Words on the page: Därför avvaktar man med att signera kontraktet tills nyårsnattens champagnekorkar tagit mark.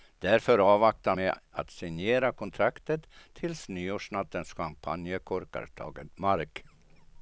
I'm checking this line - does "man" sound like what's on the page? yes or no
no